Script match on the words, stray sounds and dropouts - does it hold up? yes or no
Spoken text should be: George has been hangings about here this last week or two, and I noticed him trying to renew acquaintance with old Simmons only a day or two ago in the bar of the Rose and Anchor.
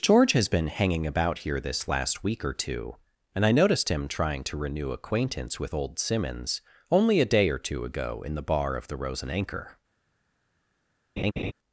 no